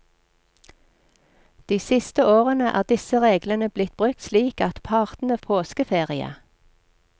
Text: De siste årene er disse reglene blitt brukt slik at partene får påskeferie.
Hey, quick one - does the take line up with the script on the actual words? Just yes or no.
no